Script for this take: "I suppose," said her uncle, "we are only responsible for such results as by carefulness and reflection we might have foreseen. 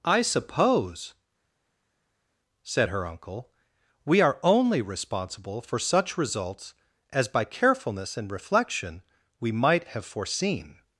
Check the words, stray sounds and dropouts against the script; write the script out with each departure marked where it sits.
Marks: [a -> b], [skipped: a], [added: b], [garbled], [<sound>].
"I suppose," said her uncle, "we are only responsible for such results as by carefulness and reflection we might have foreseen.